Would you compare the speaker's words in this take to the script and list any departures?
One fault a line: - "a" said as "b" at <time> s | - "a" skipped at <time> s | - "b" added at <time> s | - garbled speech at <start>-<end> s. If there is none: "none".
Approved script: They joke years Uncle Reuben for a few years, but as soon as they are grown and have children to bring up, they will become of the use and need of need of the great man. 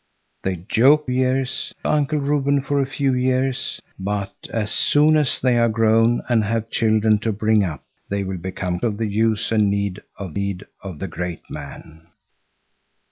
none